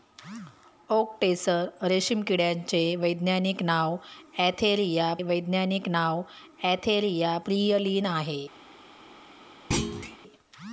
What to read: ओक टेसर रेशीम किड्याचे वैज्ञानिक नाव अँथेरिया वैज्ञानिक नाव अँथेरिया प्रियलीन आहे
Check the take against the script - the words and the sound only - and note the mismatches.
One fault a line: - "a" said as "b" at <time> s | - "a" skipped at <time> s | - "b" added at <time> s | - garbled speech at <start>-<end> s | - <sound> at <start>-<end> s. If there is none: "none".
- thud at 9.7-10.2 s